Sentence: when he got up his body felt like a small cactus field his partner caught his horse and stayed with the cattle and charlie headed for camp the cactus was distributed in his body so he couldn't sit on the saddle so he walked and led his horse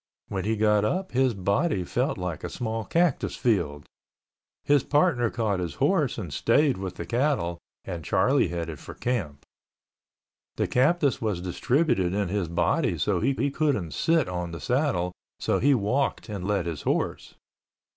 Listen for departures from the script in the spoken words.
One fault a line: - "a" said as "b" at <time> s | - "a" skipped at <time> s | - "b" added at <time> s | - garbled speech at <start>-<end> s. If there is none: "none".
- "he" added at 13.4 s